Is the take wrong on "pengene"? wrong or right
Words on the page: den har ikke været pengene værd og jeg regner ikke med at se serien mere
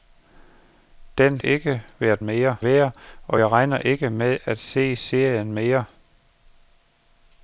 wrong